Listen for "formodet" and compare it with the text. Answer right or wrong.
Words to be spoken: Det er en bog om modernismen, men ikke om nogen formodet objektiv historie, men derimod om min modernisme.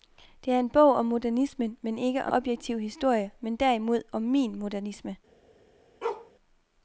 wrong